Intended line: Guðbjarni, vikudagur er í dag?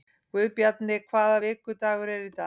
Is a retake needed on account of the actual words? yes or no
yes